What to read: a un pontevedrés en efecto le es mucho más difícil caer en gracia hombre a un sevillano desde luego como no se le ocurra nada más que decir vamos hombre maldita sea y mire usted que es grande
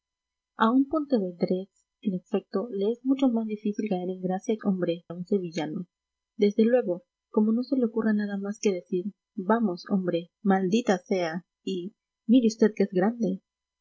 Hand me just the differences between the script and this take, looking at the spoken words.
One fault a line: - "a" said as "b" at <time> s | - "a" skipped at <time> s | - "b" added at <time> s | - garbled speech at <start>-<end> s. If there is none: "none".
none